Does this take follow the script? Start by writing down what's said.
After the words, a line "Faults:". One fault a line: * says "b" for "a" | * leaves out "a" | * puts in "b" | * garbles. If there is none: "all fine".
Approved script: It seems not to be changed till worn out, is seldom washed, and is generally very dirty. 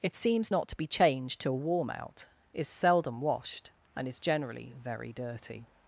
It seems not to be changed till warm out, is seldom washed, and is generally very dirty.
Faults:
* says "warm" for "worn"